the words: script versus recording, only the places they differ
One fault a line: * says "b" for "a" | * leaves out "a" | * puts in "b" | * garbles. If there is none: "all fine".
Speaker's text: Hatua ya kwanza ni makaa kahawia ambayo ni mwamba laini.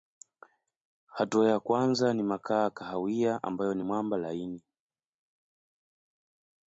all fine